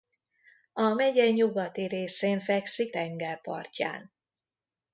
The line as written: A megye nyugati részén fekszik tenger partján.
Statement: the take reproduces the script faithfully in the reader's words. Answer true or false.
true